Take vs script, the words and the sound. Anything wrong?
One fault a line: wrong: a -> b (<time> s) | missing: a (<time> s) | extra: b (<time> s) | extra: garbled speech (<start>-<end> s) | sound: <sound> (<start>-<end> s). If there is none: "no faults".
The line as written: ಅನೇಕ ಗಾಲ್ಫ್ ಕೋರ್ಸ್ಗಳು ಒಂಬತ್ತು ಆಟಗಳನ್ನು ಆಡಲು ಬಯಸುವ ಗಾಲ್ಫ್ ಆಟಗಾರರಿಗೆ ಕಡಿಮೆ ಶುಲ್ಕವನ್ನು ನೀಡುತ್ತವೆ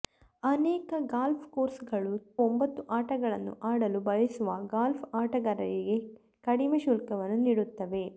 no faults